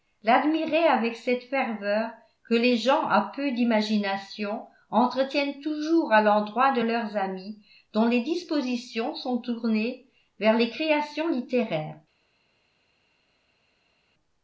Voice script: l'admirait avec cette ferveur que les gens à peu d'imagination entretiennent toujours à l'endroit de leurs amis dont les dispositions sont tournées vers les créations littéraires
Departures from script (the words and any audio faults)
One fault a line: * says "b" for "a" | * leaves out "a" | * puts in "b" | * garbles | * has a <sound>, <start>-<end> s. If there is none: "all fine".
all fine